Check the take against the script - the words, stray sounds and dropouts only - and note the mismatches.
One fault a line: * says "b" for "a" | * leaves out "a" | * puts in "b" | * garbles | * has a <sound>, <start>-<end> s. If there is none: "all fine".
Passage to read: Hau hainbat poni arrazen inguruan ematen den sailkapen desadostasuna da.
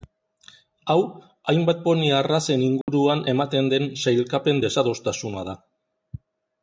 * has a dropout, 2.8-2.9 s